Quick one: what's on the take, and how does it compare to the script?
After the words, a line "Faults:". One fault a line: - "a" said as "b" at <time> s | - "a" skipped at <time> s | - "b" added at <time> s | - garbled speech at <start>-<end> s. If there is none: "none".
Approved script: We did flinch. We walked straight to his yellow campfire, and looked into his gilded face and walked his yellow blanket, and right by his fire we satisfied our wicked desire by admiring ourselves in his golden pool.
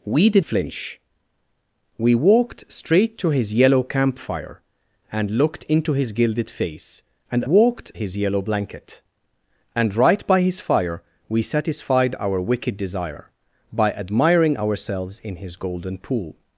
We did flinch. We walked straight to his yellow campfire, and looked into his gilded face and walked his yellow blanket, and right by his fire we satisfied our wicked desire by admiring ourselves in his golden pool.
Faults:
none